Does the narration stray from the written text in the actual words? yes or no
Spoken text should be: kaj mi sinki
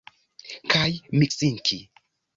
no